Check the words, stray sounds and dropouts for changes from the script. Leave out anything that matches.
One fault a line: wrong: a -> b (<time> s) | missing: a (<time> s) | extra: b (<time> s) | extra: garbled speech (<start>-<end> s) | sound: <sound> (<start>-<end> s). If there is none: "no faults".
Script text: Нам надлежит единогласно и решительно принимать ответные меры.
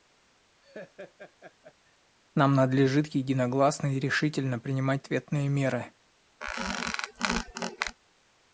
sound: laugh (0.6-2.0 s)
sound: squeak (6.4-8.0 s)